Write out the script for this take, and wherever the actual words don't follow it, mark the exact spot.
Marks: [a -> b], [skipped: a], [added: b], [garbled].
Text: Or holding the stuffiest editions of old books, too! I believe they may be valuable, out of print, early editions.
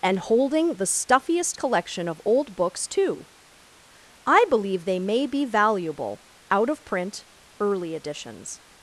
[Or -> And] holding the stuffiest [editions -> collection] of old books, too! I believe they may be valuable, out of print, early editions.